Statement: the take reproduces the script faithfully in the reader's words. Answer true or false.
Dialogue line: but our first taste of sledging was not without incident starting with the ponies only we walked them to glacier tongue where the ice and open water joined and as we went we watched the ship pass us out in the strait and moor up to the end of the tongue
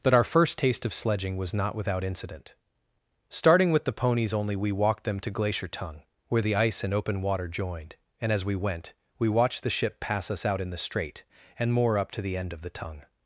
true